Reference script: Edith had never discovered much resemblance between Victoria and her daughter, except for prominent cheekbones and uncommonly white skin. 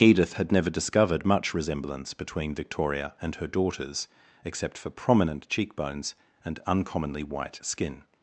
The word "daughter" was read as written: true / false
false